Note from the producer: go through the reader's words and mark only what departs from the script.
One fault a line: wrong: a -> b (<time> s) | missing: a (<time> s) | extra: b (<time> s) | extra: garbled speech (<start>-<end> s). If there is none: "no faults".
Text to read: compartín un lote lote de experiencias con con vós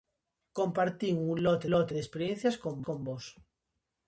no faults